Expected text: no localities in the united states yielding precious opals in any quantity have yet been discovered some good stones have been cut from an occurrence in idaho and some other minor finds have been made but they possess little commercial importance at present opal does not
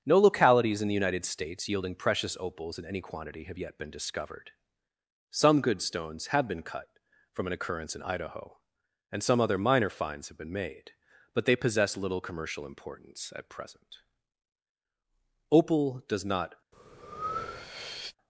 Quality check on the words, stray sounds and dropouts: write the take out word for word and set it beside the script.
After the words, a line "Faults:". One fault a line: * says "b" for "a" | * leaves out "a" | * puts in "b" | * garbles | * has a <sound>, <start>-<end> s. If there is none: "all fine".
no localities in the united states yielding precious opals in any quantity have yet been discovered some good stones have been cut from an occurrence in idaho and some other minor finds have been made but they possess little commercial importance at present opal does not
Faults:
* has a breath, 16.7-18.2 s